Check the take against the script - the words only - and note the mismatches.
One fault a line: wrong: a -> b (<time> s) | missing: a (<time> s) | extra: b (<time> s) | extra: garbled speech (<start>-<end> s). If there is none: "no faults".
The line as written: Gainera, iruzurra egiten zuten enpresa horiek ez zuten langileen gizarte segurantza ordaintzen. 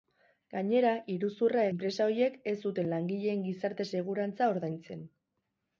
missing: egiten zuten (1.6 s)